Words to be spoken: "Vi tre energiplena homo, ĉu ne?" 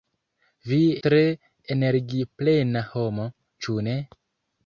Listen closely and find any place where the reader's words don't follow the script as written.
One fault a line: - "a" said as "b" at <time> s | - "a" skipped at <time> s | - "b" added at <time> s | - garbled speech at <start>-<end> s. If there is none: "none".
none